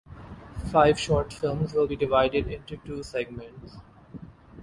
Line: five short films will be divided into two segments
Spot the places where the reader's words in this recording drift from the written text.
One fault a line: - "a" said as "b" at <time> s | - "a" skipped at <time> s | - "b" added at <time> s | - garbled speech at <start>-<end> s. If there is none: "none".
none